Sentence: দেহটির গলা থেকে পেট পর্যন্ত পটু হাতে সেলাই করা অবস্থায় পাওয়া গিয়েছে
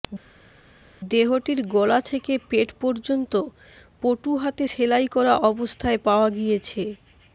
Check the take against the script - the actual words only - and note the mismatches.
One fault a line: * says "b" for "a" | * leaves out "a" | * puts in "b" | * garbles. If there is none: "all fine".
all fine